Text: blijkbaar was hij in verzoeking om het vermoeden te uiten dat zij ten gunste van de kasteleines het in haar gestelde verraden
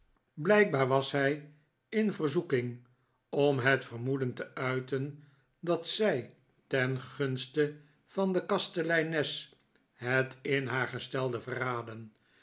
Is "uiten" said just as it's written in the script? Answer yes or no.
yes